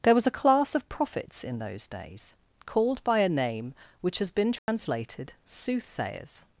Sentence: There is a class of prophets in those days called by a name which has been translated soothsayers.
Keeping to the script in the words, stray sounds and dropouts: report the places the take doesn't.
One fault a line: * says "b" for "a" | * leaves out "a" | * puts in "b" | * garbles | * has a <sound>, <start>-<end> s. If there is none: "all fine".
* says "was" for "is"
* has a dropout, 4.6-4.7 s